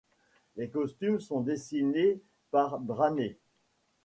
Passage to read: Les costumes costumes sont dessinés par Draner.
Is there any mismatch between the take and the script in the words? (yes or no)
yes